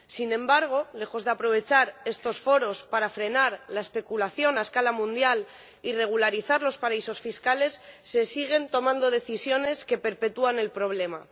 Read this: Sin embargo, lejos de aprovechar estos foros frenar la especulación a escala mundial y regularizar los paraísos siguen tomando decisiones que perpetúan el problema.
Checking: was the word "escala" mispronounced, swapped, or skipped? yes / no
no